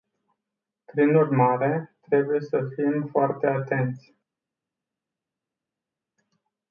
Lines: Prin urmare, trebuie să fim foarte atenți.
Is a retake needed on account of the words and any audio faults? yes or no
no